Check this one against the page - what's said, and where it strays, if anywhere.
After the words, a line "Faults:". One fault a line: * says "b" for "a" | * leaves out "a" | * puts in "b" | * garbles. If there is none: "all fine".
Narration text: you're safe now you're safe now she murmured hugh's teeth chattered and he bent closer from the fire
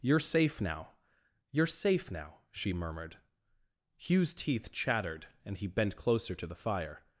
you're safe now you're safe now she murmured hugh's teeth chattered and he bent closer to the fire
Faults:
* says "to" for "from"